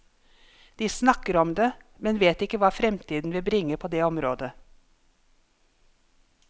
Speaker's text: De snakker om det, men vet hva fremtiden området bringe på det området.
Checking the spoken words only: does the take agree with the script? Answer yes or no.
no